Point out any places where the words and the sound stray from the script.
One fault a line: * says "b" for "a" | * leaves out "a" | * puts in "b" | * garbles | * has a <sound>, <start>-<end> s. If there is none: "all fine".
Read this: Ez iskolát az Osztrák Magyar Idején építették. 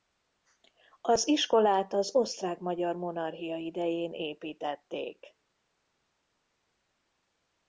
* says "Az" for "Ez"
* puts in "Monarchia"